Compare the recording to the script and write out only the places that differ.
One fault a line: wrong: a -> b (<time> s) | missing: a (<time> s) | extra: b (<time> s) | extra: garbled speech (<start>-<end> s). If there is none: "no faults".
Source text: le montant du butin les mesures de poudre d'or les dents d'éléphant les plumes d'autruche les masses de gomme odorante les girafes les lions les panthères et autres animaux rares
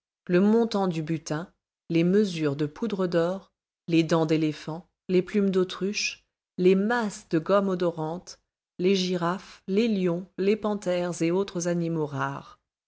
no faults